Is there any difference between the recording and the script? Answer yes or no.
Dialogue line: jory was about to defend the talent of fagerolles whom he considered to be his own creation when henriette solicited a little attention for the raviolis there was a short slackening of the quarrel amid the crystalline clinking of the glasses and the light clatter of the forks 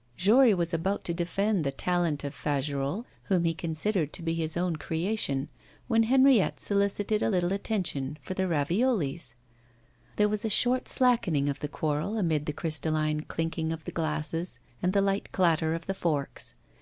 no